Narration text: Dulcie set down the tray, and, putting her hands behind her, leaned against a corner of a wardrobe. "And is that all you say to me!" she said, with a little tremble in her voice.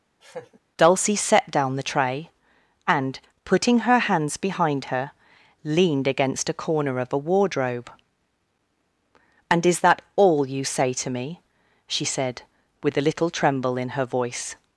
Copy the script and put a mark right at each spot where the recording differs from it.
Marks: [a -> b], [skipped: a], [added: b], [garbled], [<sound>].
[laugh] Dulcie set down the tray, and, putting her hands behind her, leaned against a corner of a wardrobe. "And is that all you say to me!" she said, with a little tremble in her voice.